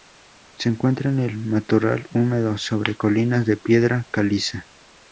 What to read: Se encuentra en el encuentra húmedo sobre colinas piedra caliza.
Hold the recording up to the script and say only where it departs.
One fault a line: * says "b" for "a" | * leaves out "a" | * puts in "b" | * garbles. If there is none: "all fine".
* says "matorral" for "encuentra"
* puts in "de"